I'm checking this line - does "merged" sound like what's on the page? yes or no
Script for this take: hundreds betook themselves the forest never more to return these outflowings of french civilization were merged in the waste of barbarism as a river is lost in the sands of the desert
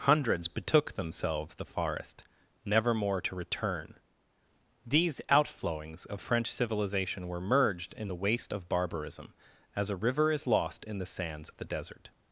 yes